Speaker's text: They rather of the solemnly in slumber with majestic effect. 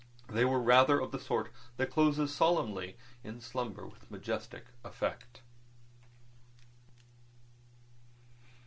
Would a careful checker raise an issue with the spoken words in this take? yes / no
yes